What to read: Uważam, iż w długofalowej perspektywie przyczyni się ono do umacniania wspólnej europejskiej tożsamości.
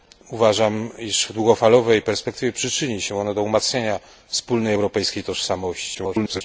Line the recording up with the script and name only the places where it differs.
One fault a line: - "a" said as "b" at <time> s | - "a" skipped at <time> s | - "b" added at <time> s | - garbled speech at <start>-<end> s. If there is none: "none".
- garbled speech at 5.9-6.4 s